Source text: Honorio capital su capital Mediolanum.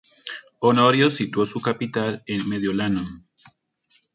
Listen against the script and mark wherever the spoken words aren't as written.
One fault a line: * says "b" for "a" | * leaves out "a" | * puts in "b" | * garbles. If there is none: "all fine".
* says "situó" for "capital"
* puts in "en"